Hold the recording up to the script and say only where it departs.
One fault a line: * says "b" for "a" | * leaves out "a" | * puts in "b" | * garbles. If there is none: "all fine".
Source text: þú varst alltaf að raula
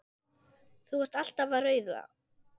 all fine